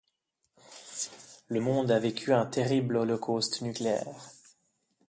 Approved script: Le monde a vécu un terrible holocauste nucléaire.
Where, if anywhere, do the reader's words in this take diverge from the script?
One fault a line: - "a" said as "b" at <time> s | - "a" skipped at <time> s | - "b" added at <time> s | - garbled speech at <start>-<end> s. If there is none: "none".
none